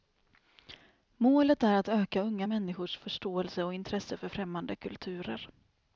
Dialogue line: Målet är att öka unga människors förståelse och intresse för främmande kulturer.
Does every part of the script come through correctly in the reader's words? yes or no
yes